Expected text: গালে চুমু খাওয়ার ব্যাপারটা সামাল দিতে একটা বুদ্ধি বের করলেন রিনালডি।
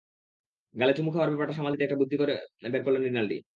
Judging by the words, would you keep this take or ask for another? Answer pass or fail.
pass